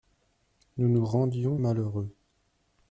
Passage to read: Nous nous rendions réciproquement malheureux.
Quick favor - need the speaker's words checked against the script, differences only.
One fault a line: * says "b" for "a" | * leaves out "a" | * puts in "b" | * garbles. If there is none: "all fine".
* leaves out "réciproquement"